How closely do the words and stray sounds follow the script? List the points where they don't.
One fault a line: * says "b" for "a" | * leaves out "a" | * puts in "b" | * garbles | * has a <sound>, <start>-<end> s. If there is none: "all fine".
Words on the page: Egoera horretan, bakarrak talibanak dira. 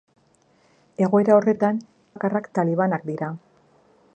all fine